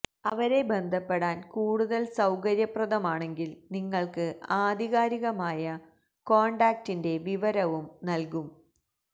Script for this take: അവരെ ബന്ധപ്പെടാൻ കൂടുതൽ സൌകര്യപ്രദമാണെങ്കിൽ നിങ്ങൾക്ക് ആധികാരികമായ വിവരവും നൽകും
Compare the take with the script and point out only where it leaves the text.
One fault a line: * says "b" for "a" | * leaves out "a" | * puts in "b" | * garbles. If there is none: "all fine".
* puts in "കോൺടാക്റ്റിന്റെ"